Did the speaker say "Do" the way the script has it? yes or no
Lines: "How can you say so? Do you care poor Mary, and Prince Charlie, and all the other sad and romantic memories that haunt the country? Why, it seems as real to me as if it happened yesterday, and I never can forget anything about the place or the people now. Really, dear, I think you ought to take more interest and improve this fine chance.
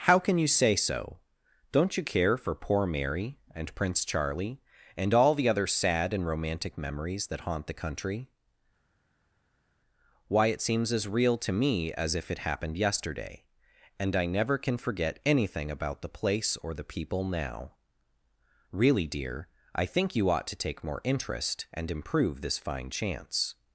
no